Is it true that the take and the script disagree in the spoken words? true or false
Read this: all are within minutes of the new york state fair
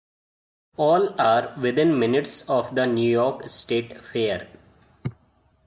false